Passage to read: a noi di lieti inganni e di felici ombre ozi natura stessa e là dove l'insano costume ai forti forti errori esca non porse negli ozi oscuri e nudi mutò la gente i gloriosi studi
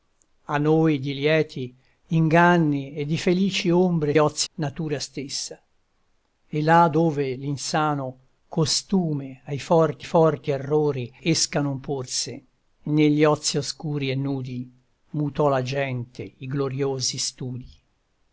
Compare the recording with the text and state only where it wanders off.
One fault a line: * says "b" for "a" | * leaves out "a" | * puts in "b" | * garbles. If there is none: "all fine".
all fine